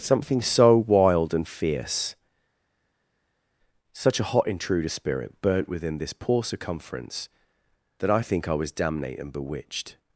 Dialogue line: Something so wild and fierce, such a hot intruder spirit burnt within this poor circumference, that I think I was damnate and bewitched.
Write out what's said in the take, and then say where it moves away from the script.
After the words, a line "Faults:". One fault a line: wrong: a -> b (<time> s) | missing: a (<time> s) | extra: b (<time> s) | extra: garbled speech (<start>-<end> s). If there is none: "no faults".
Something so wild and fierce, such a hot intruder spirit burnt within this poor circumference, that I think I was damnate and bewitched.
Faults:
no faults